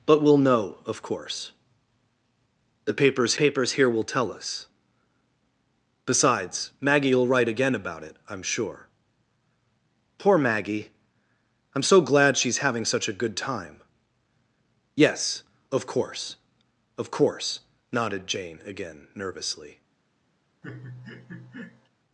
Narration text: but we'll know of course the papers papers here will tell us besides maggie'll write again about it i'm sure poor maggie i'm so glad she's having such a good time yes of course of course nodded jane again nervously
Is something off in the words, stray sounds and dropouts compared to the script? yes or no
yes